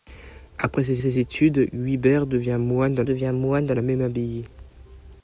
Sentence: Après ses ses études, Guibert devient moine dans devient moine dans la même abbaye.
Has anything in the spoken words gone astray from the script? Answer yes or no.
no